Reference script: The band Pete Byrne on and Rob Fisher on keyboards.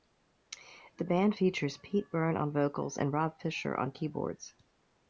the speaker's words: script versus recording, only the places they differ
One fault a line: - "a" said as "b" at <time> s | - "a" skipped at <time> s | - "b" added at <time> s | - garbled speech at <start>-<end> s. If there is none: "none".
- "features" added at 1.3 s
- "vocals" added at 2.5 s